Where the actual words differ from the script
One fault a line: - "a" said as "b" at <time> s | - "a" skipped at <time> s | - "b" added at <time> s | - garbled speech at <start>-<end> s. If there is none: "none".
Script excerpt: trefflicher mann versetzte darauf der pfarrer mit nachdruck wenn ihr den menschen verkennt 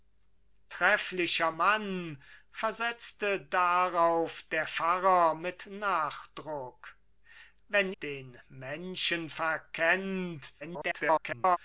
- "ihr" skipped at 7.9 s
- garbled speech at 10.6-11.6 s